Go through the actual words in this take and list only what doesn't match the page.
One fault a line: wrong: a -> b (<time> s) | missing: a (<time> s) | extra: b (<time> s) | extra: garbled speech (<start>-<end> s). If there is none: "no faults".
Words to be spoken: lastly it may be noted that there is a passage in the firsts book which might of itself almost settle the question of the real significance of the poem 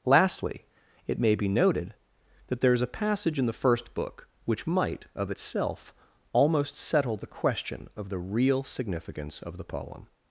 wrong: firsts -> first (3.5 s)